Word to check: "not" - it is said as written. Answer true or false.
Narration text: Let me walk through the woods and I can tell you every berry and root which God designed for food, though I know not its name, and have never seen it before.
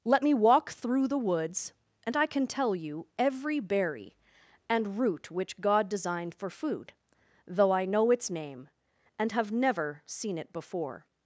false